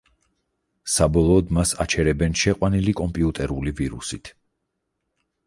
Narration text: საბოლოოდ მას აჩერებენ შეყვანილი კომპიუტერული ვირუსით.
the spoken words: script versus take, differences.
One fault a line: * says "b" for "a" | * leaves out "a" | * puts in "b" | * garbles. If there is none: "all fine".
all fine